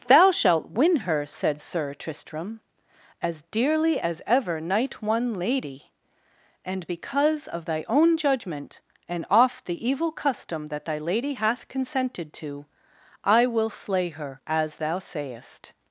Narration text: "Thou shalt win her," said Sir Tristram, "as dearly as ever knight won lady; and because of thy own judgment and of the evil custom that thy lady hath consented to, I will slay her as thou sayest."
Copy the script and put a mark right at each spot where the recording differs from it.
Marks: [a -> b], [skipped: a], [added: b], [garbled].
"Thou shalt win her," said Sir Tristram, "as dearly as ever knight won lady; and because of thy own judgment and [of -> off] the evil custom that thy lady hath consented to, I will slay her as thou sayest."